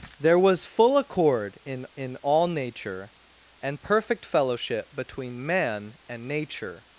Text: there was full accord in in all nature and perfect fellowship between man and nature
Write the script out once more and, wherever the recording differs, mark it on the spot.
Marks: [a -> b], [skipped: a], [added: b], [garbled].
there was full accord in in all nature and perfect fellowship between man and nature